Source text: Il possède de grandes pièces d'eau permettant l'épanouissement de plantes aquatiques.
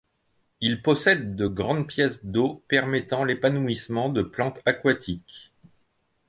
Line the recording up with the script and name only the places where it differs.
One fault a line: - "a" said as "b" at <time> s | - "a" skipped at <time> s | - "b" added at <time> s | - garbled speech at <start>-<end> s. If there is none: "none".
none